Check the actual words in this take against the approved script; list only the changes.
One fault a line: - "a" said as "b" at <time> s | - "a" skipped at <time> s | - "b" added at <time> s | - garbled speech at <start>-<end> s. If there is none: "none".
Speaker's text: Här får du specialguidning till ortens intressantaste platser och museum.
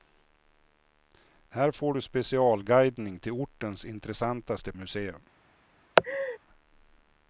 - "platser och" skipped at 4.7 s